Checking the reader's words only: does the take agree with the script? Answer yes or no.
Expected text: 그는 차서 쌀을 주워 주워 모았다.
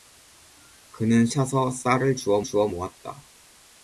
yes